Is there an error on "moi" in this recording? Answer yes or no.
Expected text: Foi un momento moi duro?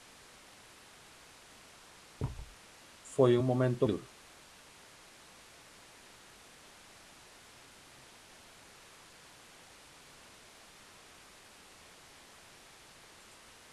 yes